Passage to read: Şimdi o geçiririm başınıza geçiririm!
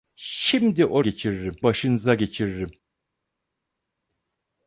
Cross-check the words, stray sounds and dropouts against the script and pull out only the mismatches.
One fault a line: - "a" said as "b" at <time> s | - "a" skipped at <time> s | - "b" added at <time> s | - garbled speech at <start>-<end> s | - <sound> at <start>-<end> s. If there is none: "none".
none